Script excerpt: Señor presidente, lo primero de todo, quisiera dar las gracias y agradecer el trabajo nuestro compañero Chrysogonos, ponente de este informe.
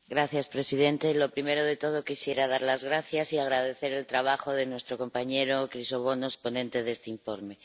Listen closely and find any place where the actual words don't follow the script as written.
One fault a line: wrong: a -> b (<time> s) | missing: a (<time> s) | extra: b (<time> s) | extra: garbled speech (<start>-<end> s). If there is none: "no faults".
extra: de (4.5 s)